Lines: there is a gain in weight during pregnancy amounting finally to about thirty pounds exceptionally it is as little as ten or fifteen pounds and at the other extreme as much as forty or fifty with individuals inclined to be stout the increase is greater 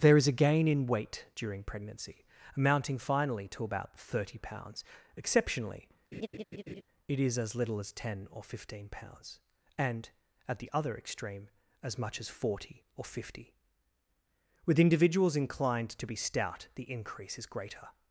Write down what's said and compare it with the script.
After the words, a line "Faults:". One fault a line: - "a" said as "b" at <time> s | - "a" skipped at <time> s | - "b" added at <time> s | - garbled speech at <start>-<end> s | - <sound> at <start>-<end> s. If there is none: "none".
there is a gain in weight during pregnancy amounting finally to about thirty pounds exceptionally it is as little as ten or fifteen pounds and at the other extreme as much as forty or fifty with individuals inclined to be stout the increase is greater
Faults:
- laugh at 6.1-6.8 s